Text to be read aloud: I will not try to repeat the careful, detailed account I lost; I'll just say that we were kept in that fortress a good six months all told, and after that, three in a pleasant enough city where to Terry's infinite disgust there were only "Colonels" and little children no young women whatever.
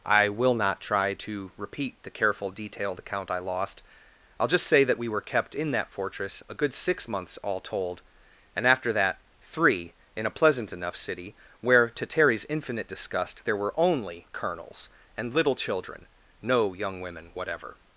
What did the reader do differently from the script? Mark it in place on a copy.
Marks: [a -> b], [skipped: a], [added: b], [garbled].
I will not try to repeat the careful, detailed account I lost; I'll just say that we were kept in that fortress a good six months all told, and after that, three in a pleasant enough city where to Terry's infinite disgust there were only "Colonels" and little children no young women whatever.